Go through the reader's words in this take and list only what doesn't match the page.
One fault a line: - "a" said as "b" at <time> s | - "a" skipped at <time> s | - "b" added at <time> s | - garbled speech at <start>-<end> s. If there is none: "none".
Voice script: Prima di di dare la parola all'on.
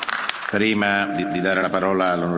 none